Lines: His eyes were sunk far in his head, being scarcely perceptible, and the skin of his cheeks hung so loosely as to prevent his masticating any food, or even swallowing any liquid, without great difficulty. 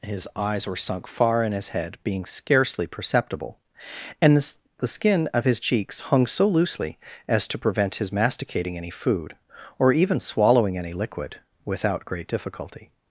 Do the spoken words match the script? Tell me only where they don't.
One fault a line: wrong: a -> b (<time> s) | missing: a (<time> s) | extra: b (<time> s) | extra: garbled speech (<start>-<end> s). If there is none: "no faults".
extra: the (4.8 s)